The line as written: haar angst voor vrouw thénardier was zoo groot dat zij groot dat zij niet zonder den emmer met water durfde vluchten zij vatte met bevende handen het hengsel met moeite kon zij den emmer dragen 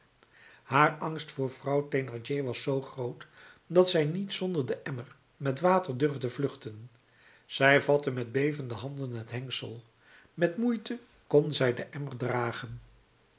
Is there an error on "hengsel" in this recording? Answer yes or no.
no